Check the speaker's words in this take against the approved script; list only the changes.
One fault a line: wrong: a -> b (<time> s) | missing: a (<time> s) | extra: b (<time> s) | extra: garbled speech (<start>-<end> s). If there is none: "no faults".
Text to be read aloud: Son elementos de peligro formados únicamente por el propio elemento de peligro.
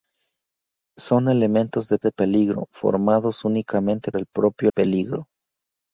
extra: de (2.0 s)
missing: por (4.1 s)
missing: elemento de (4.7 s)